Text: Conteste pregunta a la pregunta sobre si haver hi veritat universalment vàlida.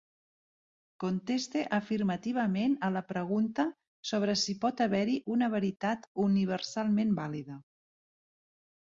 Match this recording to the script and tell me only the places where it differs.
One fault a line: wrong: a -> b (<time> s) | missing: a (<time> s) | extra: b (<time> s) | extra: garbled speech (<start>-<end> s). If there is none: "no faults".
wrong: pregunta -> afirmativament (1.8 s)
extra: pot (4.6 s)
extra: una (5.4 s)